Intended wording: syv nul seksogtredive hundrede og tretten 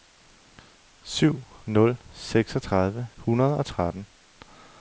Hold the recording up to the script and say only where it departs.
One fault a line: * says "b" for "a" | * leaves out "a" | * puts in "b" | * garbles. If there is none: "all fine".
all fine